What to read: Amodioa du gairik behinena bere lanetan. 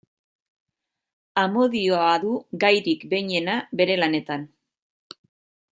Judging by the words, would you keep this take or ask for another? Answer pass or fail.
pass